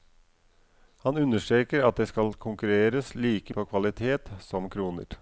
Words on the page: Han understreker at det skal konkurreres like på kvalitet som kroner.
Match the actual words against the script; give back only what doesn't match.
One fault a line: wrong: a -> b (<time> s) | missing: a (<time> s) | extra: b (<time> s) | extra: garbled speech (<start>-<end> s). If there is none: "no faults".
no faults